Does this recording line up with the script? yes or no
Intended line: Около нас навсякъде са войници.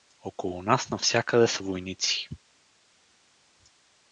yes